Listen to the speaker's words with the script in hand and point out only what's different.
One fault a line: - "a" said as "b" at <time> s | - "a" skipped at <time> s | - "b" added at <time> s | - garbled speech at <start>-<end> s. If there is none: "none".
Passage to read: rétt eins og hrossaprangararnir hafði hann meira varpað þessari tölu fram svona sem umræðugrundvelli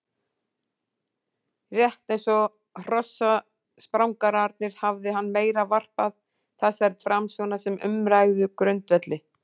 - "tölu" skipped at 7.0 s